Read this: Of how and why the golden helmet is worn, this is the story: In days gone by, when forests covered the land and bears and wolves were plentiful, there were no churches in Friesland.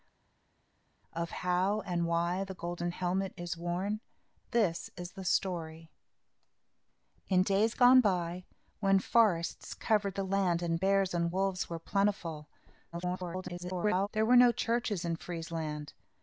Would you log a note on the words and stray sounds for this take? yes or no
yes